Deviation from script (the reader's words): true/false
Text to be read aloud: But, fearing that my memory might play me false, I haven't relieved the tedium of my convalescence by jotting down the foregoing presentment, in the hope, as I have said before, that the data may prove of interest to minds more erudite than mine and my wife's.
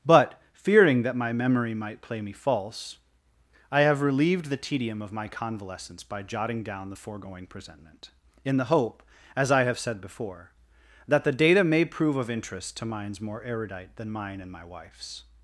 true